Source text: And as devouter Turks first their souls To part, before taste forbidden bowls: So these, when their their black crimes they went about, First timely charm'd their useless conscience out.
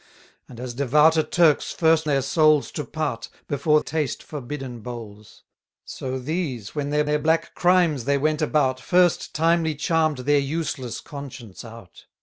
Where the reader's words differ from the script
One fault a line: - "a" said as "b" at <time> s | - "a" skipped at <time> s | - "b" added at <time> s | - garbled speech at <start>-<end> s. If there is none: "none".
none